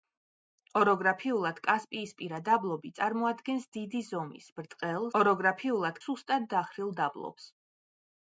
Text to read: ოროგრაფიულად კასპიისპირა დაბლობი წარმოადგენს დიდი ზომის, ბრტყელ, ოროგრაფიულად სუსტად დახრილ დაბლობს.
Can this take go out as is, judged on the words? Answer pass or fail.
pass